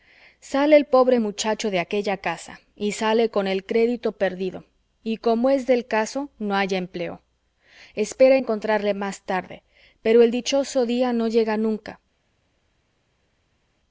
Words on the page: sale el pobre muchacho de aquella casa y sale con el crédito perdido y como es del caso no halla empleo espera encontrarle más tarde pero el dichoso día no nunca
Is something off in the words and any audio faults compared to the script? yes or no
yes